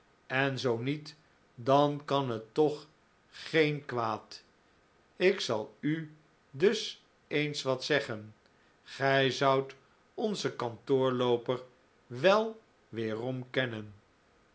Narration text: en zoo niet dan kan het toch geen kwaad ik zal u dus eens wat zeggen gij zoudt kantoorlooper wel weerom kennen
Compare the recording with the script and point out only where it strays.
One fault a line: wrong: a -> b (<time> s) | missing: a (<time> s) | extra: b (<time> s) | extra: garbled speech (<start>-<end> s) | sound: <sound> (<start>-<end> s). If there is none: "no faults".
extra: onzen (10.1 s)